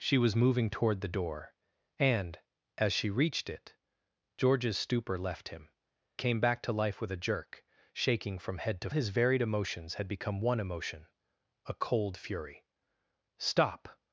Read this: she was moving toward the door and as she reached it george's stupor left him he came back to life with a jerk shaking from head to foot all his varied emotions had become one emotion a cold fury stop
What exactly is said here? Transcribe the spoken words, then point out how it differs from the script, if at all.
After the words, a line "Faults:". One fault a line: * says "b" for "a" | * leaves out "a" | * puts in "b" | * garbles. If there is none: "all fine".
she was moving toward the door and as she reached it george's stupor left him came back to life with a jerk shaking from head to his varied emotions had become one emotion a cold fury stop
Faults:
* leaves out "he"
* leaves out "foot all"